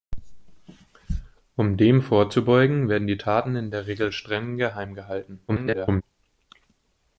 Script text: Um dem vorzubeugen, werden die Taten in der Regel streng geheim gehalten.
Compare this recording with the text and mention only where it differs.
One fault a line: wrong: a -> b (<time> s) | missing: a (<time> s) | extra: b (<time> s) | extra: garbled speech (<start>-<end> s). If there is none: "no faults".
extra: garbled speech (5.5-6.0 s)